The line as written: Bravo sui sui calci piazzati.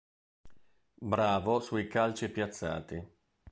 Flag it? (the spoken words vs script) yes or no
yes